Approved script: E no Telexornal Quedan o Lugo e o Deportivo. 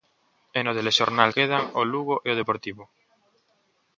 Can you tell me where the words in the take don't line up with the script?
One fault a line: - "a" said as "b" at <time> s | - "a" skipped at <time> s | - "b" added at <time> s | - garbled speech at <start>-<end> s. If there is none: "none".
none